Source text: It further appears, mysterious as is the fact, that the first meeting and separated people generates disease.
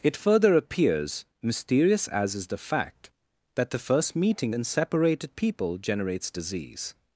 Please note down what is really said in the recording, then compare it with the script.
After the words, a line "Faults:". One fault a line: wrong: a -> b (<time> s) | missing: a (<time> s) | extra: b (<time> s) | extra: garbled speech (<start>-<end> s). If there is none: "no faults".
It further appears, mysterious as is the fact, that the first meeting and separated people generates disease.
Faults:
no faults